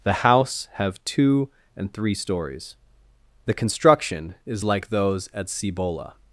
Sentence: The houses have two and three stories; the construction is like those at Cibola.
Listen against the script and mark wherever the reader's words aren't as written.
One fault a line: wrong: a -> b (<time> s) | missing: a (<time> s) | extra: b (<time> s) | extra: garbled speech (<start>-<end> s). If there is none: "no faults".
wrong: houses -> house (0.1 s)